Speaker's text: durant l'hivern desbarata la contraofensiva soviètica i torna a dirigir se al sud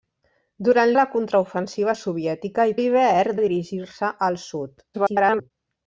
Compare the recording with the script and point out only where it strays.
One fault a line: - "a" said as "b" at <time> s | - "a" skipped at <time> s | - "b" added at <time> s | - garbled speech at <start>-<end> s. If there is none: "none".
- "l'hivern desbarata" skipped at 0.9 s
- "torna" said as "l'hivern" at 2.8 s
- garbled speech at 4.9-5.5 s